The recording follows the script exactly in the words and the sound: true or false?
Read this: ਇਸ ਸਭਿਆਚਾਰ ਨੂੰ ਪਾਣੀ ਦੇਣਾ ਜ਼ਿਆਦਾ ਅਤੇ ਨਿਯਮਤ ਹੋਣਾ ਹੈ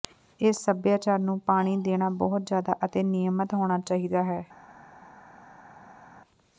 false